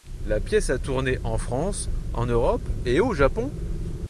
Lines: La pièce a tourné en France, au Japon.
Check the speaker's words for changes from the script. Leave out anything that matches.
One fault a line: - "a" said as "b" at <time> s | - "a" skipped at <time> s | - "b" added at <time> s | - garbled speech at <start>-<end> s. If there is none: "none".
- "en Europe et" added at 2.1 s